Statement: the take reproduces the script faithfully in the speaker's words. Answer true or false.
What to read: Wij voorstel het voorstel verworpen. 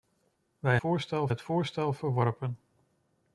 true